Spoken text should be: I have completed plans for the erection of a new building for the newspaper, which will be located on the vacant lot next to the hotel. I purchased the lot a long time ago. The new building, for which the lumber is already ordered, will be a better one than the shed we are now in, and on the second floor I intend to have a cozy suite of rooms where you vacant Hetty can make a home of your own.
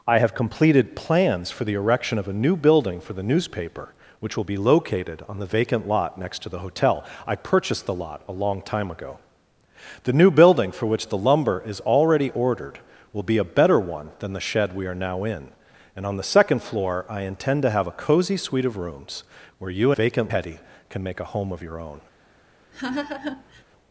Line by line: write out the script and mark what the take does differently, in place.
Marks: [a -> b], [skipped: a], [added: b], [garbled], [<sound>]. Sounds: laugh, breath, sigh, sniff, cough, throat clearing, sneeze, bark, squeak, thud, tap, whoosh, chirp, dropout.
I have completed plans for the erection of a new building for the newspaper, which will be located on the vacant lot next to the hotel. I purchased the lot a long time ago. The new building, for which the lumber is already ordered, will be a better one than the shed we are now in, and on the second floor I intend to have a cozy suite of rooms where you vacant Hetty can make a home of your own. [laugh]